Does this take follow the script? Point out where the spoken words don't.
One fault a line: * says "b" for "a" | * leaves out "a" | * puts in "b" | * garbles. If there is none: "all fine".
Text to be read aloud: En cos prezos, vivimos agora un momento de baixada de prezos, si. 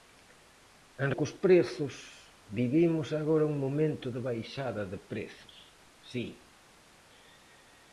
all fine